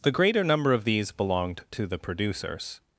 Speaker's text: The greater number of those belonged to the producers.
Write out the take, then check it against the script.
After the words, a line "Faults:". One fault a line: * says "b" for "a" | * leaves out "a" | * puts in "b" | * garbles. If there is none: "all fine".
The greater number of these belonged to the producers.
Faults:
* says "these" for "those"